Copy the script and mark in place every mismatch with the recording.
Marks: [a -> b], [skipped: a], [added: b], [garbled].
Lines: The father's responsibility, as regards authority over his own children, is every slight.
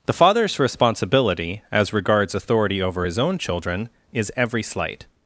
The father's responsibility, as regards authority over his own children, is every slight.